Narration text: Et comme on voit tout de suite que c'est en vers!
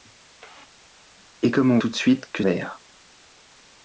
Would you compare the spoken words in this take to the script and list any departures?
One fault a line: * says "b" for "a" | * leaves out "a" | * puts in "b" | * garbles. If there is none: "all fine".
* leaves out "voit"
* leaves out "c'est en"